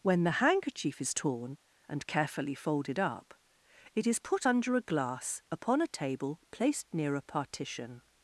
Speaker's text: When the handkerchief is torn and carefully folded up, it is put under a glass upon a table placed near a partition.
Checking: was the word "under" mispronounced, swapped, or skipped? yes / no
no